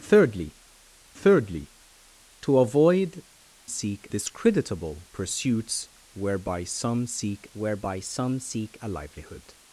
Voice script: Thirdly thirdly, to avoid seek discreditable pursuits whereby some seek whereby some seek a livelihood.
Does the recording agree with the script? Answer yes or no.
yes